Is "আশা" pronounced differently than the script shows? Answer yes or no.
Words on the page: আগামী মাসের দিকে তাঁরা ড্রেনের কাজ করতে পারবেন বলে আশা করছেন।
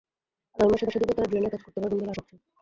yes